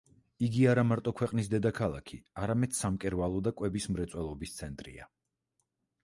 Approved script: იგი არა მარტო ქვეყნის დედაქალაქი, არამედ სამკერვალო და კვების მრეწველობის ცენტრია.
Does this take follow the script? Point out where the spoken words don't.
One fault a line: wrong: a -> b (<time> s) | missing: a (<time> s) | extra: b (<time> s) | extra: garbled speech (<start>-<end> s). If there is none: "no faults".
no faults